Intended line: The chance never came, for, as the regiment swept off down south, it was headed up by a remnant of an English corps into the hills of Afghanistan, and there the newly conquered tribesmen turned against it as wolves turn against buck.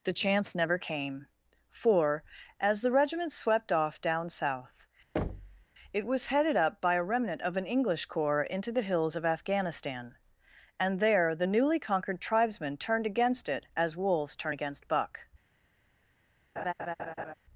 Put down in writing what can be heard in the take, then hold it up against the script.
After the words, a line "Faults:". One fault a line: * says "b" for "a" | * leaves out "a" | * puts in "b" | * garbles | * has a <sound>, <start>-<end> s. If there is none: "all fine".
The chance never came, for, as the regiment swept off down south, it was headed up by a remnant of an English corps into the hills of Afghanistan, and there the newly conquered tribesmen turned against it as wolves turn against buck.
Faults:
* has a thud, 5.2-5.7 s
* has a laugh, 16.6-17.3 s